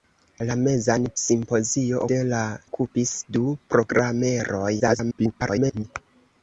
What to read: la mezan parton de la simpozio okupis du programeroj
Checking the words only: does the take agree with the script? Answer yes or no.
no